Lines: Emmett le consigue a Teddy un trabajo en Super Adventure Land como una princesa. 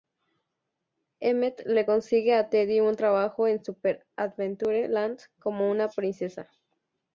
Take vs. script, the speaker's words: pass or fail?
pass